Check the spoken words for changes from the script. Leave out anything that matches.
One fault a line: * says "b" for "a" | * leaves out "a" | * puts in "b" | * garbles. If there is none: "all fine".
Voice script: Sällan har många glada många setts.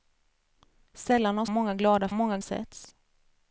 all fine